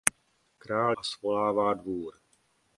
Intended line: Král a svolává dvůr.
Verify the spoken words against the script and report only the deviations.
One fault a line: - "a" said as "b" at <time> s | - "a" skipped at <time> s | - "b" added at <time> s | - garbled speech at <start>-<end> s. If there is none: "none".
none